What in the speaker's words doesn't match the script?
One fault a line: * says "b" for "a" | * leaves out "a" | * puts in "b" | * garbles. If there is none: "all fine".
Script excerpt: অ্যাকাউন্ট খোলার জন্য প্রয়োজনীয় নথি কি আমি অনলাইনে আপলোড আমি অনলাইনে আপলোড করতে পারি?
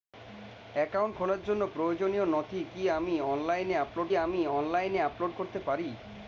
all fine